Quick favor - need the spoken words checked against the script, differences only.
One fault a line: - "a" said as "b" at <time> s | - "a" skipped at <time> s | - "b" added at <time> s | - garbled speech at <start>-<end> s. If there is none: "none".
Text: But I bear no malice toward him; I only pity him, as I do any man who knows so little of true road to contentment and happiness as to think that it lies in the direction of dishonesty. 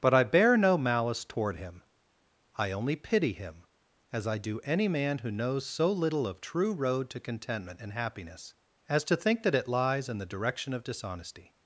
none